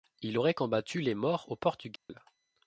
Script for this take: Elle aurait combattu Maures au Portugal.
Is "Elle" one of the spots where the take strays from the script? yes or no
yes